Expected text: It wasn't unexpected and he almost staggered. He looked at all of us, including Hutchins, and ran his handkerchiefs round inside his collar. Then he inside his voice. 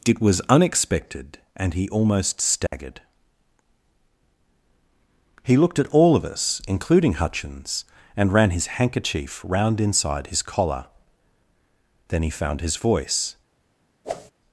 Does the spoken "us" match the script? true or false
true